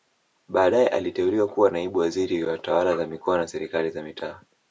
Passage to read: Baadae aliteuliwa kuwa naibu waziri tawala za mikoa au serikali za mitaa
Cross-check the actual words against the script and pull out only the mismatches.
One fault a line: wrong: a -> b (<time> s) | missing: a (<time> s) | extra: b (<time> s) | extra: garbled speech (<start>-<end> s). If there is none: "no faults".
extra: wa (2.4 s)
wrong: au -> na (3.4 s)